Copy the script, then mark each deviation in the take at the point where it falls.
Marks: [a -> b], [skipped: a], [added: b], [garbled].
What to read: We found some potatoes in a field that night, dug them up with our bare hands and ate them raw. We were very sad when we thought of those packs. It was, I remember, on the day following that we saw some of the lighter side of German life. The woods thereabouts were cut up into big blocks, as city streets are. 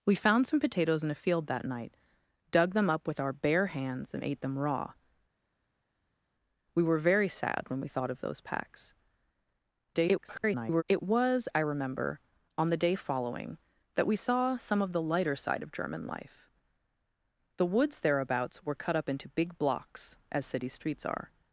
We found some potatoes in a field that night, dug them up with our bare hands and ate them raw. We were very sad when we thought of those packs. [garbled] It was, I remember, on the day following that we saw some of the lighter side of German life. The woods thereabouts were cut up into big blocks, as city streets are.